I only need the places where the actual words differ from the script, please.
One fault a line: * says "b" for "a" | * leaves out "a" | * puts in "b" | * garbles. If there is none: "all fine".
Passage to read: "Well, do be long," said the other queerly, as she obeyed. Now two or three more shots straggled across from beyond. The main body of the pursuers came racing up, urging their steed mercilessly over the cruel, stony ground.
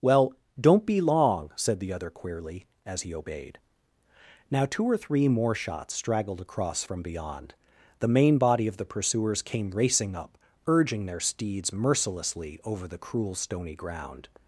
* says "don't" for "do"
* says "he" for "she"
* says "steeds" for "steed"